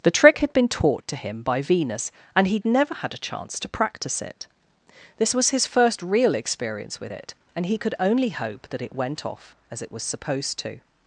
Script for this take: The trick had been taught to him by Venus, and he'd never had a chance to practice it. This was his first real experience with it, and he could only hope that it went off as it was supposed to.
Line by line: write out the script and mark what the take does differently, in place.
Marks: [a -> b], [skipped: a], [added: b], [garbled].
The trick had been taught to him by Venus, and he'd never had a chance to practice it. This was his first real experience with it, and he could only hope that it went off as it was supposed to.